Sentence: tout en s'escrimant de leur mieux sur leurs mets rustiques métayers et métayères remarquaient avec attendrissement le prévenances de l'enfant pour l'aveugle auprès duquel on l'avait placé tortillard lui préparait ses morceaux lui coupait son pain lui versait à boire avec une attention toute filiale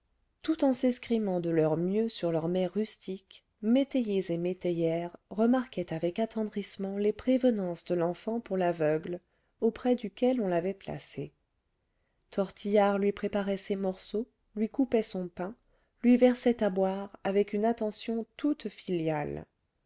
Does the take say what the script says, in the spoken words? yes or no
no